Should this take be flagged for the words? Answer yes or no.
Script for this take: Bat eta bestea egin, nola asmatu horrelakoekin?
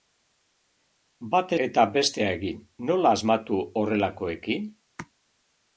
no